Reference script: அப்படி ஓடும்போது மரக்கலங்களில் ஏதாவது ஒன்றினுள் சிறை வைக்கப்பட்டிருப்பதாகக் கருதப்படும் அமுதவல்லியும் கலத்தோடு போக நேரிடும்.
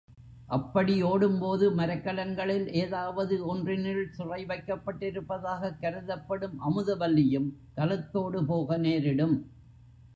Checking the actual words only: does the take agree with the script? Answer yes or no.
yes